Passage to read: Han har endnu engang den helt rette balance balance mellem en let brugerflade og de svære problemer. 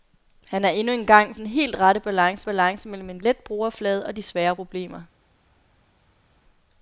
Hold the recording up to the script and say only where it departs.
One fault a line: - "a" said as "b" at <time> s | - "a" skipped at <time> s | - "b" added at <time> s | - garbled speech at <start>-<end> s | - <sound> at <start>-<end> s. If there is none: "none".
none